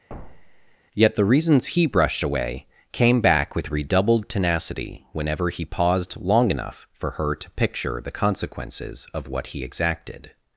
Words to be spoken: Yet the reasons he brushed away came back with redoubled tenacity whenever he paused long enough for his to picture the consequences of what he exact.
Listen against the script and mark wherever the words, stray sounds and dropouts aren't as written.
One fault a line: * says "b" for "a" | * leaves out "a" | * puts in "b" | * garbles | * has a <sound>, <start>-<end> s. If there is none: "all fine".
* has a thud, 0.1-0.8 s
* says "her" for "his"
* says "exacted" for "exact"